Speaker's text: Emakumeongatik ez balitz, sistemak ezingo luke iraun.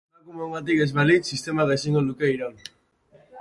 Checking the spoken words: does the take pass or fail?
pass